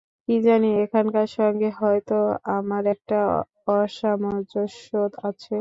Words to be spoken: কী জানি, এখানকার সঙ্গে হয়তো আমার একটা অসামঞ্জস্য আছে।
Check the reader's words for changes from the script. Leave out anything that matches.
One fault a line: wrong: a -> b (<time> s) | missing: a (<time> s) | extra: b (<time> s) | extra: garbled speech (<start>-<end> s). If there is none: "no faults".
no faults